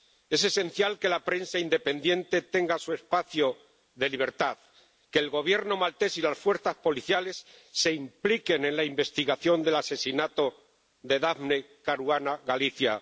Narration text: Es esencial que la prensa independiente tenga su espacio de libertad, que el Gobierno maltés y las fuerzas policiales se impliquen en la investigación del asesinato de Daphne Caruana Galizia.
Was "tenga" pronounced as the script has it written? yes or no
yes